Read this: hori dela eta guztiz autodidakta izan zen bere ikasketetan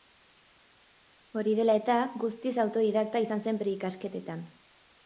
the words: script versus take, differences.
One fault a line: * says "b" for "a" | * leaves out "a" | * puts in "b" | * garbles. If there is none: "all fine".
all fine